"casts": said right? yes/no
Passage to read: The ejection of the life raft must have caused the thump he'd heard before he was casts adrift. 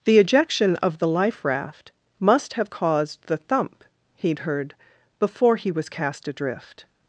no